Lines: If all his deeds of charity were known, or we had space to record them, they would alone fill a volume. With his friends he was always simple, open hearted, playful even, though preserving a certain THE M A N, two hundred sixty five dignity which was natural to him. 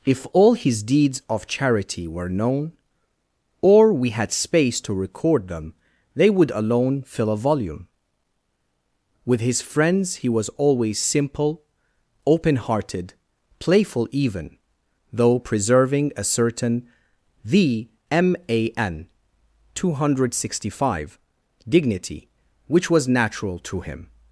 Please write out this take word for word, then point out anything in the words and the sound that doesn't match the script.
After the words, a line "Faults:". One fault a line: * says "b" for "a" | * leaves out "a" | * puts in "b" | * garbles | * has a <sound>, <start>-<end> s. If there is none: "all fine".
If all his deeds of charity were known, or we had space to record them, they would alone fill a volume. With his friends he was always simple, open hearted, playful even, though preserving a certain THE M A N, two hundred sixty five dignity which was natural to him.
Faults:
all fine